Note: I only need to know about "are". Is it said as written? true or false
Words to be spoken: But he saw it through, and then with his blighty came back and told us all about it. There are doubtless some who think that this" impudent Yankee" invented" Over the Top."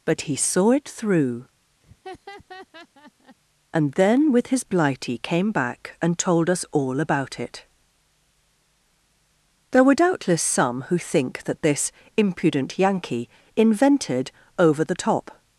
false